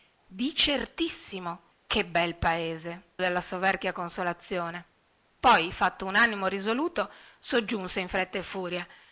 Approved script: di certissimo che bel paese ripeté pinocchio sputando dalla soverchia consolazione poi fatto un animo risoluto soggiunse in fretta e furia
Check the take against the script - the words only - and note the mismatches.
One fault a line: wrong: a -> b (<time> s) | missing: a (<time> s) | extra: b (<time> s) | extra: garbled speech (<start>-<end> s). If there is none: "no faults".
missing: ripeté pinocchio sputando (3.1 s)